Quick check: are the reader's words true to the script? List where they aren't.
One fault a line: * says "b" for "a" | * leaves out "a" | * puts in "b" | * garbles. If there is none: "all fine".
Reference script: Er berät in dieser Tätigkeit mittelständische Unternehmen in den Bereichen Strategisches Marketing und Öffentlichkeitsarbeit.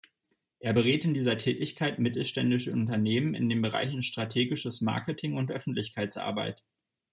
all fine